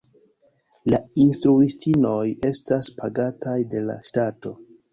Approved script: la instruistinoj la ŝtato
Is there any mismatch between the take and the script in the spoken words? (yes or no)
yes